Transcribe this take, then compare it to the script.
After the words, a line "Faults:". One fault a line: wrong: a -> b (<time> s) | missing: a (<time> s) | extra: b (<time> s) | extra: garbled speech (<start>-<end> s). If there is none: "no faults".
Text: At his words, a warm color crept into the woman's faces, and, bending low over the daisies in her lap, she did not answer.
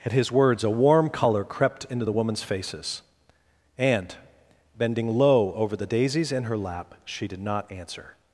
At his words, a warm color crept into the woman's faces, and, bending low over the daisies in her lap, she did not answer.
Faults:
no faults